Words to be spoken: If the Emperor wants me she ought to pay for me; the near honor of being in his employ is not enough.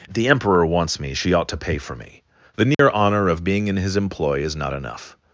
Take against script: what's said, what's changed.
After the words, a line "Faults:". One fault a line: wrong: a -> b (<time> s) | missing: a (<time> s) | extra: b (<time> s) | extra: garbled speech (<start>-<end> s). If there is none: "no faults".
If the Emperor wants me she ought to pay for me; the near honor of being in his employ is not enough.
Faults:
no faults